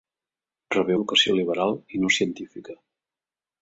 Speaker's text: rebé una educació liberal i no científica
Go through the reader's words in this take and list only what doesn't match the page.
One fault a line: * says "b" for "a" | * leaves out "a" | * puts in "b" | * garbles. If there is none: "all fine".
* leaves out "una"